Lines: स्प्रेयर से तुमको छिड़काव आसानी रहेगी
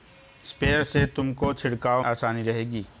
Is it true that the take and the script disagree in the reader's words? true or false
false